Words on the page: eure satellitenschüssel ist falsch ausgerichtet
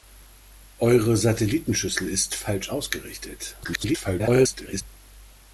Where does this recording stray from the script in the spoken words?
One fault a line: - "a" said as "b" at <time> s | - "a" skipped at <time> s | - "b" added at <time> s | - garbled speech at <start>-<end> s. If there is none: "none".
- garbled speech at 3.6-4.8 s